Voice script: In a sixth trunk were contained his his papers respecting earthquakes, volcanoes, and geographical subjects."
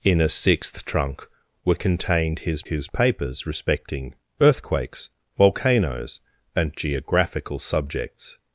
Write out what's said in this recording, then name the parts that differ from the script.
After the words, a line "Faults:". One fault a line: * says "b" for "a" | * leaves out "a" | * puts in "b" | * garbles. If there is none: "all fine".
In a sixth trunk were contained his his papers respecting earthquakes, volcanoes, and geographical subjects."
Faults:
all fine